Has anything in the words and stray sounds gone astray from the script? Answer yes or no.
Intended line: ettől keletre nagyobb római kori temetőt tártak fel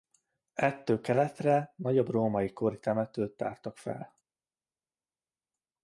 no